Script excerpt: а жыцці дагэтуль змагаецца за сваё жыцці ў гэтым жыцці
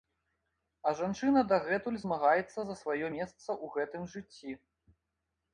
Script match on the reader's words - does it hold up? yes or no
no